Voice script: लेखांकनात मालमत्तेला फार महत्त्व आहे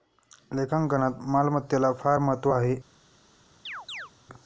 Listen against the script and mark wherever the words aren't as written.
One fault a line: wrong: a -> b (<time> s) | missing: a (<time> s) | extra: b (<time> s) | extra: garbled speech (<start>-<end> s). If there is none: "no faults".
no faults